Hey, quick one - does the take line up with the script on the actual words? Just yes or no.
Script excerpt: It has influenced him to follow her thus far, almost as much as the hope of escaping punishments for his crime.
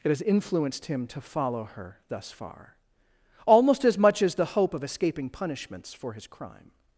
yes